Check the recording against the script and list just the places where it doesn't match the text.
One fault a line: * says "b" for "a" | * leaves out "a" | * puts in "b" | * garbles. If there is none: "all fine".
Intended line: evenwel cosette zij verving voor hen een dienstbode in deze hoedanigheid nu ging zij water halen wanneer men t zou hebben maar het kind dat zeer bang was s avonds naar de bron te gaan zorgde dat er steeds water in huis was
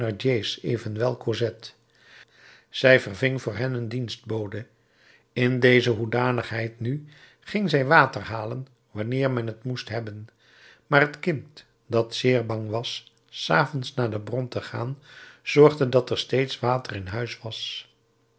* says "moest" for "zou"